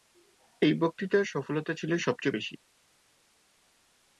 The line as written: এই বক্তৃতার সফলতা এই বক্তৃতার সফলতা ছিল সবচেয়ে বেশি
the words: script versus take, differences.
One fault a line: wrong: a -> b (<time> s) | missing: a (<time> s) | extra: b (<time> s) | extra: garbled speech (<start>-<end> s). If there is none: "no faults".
missing: এই বক্তৃতার সফলতা (1.7 s)